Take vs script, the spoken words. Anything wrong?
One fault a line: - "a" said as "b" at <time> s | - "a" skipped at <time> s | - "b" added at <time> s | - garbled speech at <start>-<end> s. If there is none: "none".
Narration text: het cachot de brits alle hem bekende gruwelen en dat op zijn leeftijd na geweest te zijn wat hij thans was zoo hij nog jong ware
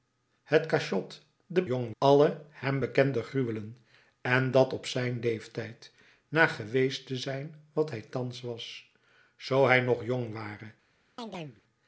- "brits" said as "jong" at 1.6 s